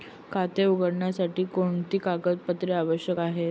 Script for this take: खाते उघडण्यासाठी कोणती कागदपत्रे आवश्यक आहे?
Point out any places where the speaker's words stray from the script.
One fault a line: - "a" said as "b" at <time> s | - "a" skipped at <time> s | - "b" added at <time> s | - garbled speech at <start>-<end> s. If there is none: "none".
none